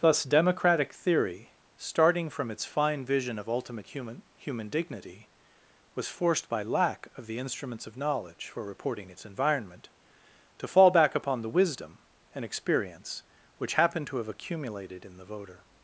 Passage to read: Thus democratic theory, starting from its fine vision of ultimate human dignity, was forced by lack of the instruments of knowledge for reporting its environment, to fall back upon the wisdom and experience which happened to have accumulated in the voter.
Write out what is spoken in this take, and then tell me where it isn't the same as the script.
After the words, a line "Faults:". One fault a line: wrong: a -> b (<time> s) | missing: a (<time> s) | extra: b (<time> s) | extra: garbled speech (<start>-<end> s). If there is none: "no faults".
Thus democratic theory, starting from its fine vision of ultimate human human dignity, was forced by lack of the instruments of knowledge for reporting its environment, to fall back upon the wisdom and experience which happened to have accumulated in the voter.
Faults:
extra: human (4.3 s)